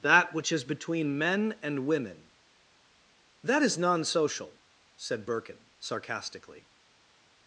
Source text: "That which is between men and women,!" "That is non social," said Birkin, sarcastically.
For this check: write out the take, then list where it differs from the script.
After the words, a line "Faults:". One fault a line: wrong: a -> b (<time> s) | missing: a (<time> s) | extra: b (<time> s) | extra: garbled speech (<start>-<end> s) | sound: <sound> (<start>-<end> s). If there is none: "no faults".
"That which is between men and women,!" "That is non social," said Birkin, sarcastically.
Faults:
no faults